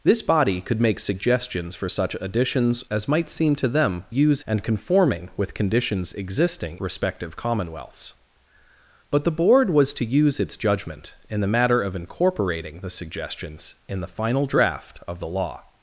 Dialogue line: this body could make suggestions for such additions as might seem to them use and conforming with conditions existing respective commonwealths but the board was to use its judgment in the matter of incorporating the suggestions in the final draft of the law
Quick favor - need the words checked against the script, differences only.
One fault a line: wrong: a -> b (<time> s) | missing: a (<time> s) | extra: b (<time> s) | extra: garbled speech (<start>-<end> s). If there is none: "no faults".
no faults